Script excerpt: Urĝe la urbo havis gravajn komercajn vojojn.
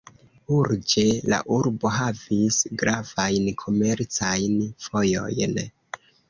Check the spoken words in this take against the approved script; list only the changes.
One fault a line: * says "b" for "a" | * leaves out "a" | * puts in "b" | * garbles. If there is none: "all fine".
all fine